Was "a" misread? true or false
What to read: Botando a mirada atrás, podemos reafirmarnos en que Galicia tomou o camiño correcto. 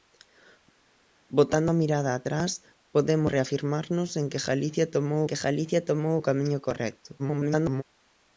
false